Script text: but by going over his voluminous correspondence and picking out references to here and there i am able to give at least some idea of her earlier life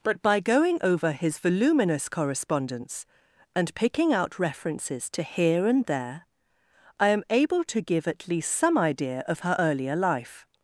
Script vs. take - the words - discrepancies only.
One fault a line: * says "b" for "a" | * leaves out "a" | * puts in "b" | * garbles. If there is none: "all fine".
all fine